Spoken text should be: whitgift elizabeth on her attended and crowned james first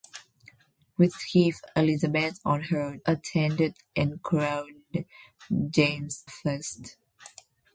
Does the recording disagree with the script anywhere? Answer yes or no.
no